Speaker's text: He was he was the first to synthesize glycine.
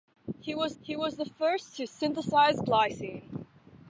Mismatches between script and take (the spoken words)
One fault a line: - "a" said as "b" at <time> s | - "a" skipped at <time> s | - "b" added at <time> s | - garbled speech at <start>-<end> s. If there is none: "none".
none